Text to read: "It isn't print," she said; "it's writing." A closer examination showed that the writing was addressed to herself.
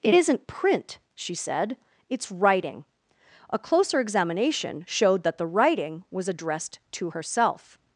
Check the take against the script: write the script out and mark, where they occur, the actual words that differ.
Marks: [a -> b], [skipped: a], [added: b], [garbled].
"It isn't print," she said; "it's writing." A closer examination showed that the writing was addressed to herself.